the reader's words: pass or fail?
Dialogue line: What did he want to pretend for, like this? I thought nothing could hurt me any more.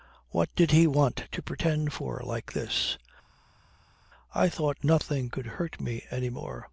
pass